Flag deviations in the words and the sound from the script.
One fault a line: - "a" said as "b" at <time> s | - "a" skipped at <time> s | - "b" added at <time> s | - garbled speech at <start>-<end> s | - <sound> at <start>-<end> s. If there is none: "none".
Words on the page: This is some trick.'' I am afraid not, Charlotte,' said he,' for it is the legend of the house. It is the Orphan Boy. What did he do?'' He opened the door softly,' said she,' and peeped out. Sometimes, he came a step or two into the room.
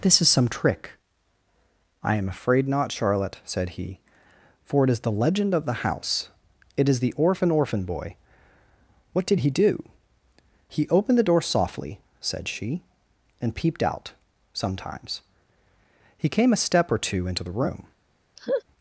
- "Orphan" added at 7.5 s
- laugh at 18.4-18.6 s